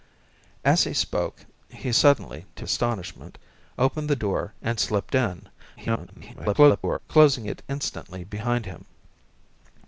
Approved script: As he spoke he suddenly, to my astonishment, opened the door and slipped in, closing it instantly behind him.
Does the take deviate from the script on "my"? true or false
true